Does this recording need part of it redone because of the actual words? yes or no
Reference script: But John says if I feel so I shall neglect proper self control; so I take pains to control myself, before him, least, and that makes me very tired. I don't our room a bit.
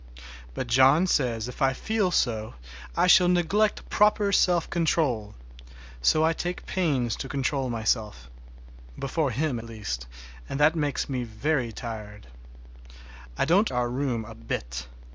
no